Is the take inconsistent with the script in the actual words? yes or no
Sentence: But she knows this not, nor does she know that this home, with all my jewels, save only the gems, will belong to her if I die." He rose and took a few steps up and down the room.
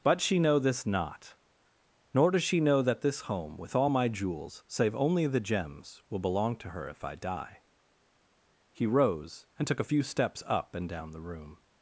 yes